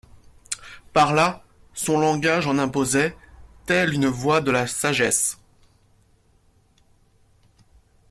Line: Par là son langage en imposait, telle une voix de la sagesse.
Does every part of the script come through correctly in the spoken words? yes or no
yes